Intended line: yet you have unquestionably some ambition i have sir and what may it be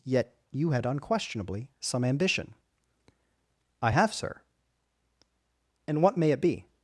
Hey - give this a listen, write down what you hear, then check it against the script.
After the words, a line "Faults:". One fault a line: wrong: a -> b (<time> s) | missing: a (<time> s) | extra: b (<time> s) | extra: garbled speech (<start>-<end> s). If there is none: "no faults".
yet you had unquestionably some ambition i have sir and what may it be
Faults:
wrong: have -> had (0.7 s)